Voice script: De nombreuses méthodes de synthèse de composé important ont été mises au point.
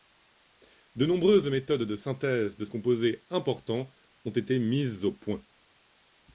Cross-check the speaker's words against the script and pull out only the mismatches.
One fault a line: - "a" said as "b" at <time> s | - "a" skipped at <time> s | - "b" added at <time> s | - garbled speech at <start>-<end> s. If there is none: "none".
none